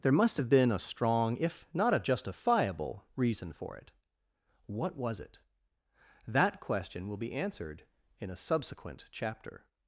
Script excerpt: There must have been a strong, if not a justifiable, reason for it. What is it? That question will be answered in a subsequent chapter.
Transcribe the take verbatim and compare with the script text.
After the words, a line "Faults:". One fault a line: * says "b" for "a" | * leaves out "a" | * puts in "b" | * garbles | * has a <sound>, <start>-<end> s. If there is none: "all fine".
There must have been a strong, if not a justifiable, reason for it. What was it? That question will be answered in a subsequent chapter.
Faults:
* says "was" for "is"